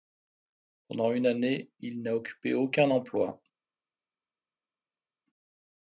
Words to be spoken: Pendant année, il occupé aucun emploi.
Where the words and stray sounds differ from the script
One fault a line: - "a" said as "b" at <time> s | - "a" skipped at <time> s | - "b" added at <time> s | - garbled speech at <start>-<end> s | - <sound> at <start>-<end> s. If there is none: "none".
- "une" added at 1.1 s
- "n'a" added at 2.0 s